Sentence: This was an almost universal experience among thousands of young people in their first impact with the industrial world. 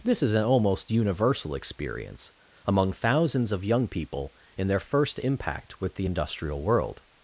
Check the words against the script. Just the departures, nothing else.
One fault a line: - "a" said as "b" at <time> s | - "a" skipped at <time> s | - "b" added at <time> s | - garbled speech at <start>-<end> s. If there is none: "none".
- "was" said as "is" at 0.2 s